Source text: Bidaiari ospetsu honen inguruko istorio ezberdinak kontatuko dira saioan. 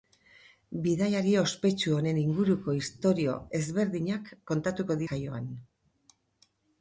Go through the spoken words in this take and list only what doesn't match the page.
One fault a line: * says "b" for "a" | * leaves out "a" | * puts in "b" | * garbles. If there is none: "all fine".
* leaves out "dira"